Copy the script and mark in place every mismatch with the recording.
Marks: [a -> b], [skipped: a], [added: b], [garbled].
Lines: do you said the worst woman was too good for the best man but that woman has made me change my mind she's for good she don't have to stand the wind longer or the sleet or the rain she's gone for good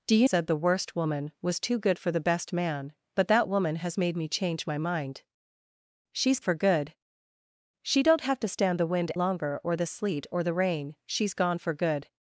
do you said the worst woman was too good for the best man but that woman has made me change my mind she's for good she don't have to stand the wind longer or the sleet or the rain she's gone for good